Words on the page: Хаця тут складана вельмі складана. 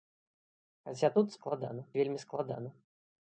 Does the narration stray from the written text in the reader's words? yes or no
no